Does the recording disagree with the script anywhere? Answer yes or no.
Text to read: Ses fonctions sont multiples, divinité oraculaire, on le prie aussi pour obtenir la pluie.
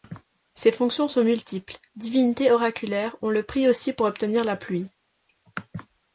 no